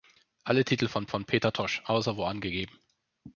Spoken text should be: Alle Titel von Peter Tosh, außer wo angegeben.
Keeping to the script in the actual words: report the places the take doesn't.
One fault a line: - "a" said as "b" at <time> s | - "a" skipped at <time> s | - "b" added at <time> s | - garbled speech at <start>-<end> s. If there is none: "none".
- "von" added at 1.1 s